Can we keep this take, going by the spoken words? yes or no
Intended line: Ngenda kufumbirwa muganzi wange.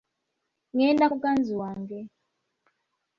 no